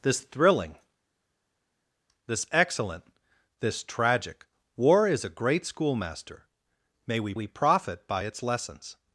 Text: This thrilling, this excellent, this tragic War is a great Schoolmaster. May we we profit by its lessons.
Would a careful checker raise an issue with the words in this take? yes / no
no